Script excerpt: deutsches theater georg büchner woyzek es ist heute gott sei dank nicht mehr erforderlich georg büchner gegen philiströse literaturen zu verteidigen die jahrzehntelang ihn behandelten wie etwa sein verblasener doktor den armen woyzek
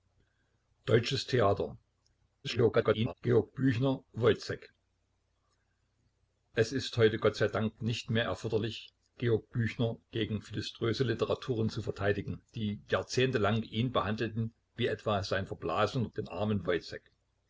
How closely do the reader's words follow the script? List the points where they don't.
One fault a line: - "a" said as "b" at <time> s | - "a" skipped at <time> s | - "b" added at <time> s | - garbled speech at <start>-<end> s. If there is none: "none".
- garbled speech at 2.4-3.1 s
- "doktor" skipped at 16.1 s